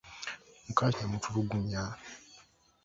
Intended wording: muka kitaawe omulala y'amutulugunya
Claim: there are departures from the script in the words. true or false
true